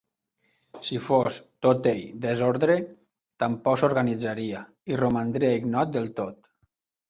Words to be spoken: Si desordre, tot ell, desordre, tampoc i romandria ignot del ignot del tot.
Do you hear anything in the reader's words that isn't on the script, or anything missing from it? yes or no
yes